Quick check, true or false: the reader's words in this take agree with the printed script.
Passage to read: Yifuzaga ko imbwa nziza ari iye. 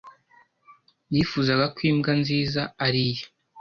true